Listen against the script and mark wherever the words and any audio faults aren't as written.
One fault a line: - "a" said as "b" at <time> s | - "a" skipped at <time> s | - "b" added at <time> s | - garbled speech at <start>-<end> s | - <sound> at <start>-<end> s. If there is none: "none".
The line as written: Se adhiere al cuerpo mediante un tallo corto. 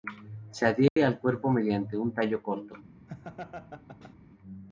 - dropout at 0.9-1.0 s
- laugh at 3.1-4.2 s